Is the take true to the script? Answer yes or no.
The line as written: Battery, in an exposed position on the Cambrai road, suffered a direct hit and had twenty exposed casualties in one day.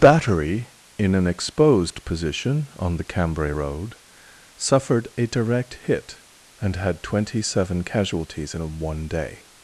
no